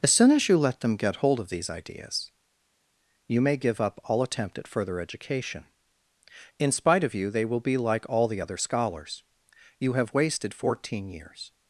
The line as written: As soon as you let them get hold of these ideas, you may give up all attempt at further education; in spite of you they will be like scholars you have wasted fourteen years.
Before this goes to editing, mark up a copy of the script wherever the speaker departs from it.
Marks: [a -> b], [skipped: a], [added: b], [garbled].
As soon as you let them get hold of these ideas, you may give up all attempt at further education; in spite of you they will be like [added: all the other] scholars you have wasted fourteen years.